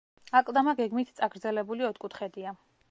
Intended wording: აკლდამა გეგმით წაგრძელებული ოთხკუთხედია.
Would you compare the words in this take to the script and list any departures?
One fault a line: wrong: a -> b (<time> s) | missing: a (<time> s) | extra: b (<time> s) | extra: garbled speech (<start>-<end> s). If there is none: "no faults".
no faults